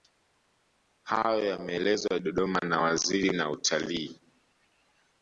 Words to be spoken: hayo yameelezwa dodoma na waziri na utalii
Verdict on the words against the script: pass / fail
pass